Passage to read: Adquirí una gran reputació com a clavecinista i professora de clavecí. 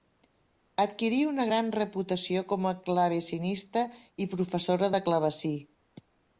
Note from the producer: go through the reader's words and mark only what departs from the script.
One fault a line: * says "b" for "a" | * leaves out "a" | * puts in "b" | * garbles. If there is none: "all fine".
all fine